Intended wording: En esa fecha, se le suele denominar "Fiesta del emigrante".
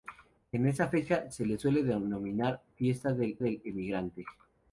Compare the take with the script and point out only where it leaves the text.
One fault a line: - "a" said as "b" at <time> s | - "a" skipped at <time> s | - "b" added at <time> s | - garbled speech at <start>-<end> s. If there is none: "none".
- "del" added at 3.4 s